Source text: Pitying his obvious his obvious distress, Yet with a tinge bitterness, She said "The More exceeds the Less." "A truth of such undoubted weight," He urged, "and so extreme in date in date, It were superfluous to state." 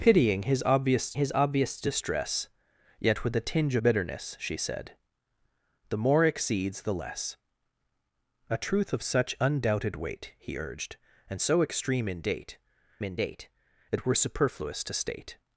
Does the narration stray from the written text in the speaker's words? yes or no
no